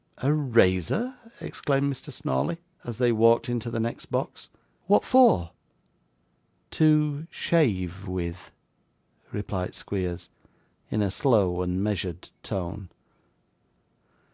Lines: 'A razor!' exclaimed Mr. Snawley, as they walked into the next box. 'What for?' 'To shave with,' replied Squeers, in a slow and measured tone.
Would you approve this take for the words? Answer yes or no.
yes